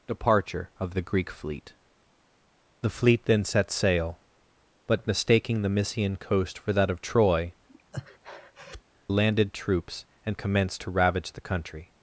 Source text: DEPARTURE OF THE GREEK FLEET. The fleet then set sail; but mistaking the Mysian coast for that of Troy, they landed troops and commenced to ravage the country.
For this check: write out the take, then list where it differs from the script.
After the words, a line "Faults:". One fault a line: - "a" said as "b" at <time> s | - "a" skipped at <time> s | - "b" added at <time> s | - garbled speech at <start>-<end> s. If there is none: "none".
DEPARTURE OF THE GREEK FLEET. The fleet then set sail; but mistaking the Mysian coast for that of Troy, landed troops and commenced to ravage the country.
Faults:
- "they" skipped at 7.5 s